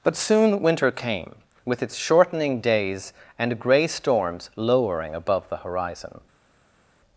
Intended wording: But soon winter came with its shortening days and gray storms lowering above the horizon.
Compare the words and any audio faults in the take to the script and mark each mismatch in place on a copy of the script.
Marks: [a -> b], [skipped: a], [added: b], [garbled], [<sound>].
But soon winter came with its shortening days and gray storms lowering above the horizon.